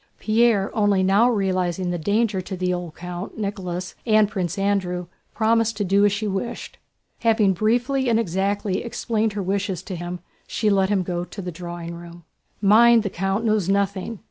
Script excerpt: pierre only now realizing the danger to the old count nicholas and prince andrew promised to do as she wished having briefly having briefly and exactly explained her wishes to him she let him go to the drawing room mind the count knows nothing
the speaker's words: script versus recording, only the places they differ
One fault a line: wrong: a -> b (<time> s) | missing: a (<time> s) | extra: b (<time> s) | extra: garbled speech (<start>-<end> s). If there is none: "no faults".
missing: having briefly (8.1 s)